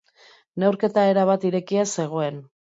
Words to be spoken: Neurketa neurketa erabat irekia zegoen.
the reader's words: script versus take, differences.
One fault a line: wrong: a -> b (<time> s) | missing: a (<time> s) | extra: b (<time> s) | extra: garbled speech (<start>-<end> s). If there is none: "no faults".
missing: neurketa (1.1 s)